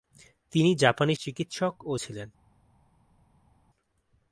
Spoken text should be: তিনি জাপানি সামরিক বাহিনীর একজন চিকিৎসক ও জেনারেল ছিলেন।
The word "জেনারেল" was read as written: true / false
false